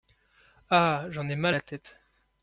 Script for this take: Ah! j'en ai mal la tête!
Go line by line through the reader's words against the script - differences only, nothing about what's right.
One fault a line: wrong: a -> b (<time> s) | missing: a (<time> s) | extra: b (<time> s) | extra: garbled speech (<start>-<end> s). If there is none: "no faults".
no faults